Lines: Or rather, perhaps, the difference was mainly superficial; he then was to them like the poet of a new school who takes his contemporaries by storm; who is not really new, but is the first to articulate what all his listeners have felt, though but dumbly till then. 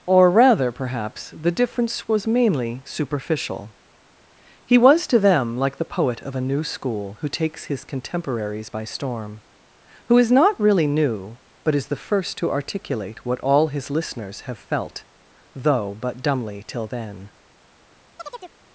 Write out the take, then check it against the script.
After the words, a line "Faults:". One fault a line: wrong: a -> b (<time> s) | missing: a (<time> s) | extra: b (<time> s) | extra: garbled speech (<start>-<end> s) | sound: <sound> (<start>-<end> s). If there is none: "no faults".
Or rather, perhaps, the difference was mainly superficial; he was to them like the poet of a new school who takes his contemporaries by storm; who is not really new, but is the first to articulate what all his listeners have felt, though but dumbly till then.
Faults:
missing: then (4.8 s)
sound: chirp (18.2-18.5 s)